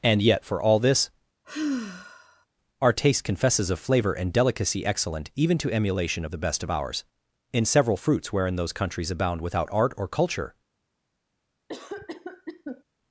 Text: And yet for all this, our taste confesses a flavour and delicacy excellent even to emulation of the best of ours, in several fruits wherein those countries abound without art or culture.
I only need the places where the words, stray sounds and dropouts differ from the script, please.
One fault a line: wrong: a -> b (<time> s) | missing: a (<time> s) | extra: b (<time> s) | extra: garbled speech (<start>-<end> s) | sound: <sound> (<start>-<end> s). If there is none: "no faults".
sound: sigh (1.4-2.5 s)
wrong: a flavour -> of flavor (3.7 s)
sound: cough (11.7-12.8 s)